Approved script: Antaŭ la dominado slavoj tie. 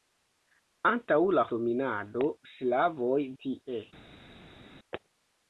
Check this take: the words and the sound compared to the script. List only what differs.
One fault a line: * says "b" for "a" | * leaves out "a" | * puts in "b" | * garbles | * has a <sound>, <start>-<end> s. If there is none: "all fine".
all fine